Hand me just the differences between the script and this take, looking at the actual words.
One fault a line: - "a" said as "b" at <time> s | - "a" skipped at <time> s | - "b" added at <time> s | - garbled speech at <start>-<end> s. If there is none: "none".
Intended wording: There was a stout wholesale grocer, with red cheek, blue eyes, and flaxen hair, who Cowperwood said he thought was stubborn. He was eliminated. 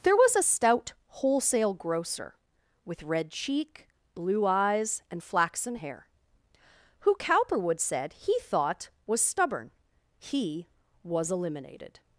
none